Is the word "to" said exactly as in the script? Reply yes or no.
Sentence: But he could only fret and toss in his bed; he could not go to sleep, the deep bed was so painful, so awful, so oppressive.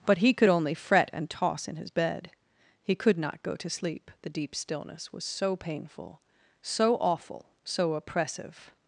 yes